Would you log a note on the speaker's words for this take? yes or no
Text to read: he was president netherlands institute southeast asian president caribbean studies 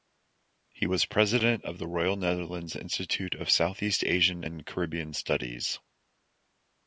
yes